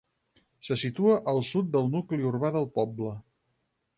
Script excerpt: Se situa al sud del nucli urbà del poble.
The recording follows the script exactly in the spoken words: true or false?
true